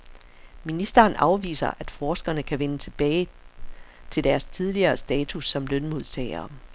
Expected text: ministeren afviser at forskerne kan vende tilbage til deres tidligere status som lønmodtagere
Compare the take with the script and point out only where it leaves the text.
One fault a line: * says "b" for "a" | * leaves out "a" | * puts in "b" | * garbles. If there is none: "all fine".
all fine